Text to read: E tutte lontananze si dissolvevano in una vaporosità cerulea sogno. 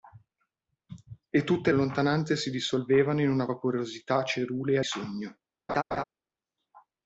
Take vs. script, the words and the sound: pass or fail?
fail